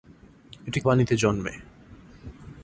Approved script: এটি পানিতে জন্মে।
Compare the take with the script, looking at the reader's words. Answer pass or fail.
pass